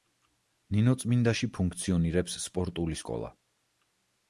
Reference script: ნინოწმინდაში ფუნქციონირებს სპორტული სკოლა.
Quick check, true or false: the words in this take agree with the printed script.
true